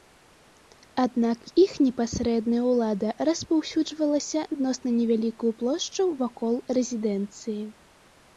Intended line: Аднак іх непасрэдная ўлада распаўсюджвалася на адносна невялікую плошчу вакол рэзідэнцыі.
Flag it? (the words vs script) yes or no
yes